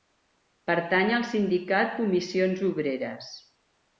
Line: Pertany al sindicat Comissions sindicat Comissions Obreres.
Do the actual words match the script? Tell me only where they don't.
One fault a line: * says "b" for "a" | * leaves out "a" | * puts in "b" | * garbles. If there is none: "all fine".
* leaves out "sindicat Comissions"